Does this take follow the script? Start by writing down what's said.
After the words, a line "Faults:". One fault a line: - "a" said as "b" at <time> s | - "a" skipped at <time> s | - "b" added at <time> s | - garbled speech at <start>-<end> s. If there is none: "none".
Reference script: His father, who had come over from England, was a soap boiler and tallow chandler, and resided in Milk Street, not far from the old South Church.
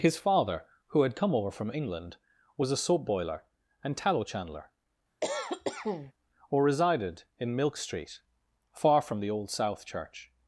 His father, who had come over from England, was a soap boiler and tallow chandler, or resided in Milk Street, far from the old South Church.
Faults:
- "and" said as "or" at 6.5 s
- "not" skipped at 8.2 s